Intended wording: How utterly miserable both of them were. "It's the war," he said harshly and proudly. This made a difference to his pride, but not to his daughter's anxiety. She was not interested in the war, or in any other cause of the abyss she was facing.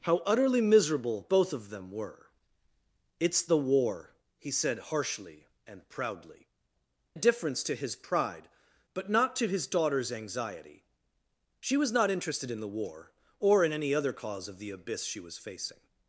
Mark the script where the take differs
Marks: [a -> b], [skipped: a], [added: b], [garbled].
How utterly miserable both of them were. "It's the war," he said harshly and proudly. [skipped: This made] a difference to his pride, but not to his daughter's anxiety. She was not interested in the war, or in any other cause of the abyss she was facing.